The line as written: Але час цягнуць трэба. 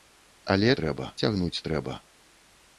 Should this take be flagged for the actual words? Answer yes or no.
yes